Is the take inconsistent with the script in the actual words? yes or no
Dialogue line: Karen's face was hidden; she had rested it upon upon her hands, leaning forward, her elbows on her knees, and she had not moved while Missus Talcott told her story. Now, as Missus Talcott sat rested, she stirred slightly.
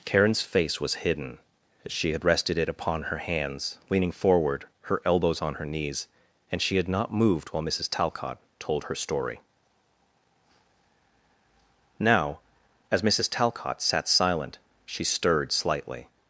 yes